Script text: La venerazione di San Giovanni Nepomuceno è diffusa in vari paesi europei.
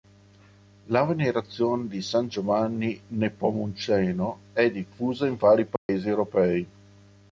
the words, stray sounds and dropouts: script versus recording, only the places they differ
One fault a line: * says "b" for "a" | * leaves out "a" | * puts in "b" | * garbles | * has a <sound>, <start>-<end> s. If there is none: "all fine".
* has a dropout, 5.8-5.9 s